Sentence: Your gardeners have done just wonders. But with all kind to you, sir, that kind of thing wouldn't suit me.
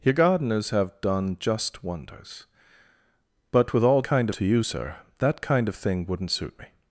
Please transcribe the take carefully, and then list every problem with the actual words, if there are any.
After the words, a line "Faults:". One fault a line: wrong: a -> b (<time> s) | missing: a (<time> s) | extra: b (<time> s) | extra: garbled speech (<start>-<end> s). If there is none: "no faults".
Your gardeners have done just wonders. But with all kind to you, sir, that kind of thing wouldn't suit me.
Faults:
no faults